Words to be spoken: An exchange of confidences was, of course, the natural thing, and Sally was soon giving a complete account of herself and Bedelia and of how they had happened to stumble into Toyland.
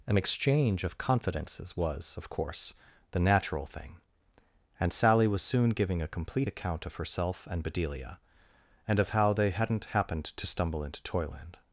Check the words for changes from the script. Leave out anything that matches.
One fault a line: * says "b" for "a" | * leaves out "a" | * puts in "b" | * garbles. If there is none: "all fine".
* says "hadn't" for "had"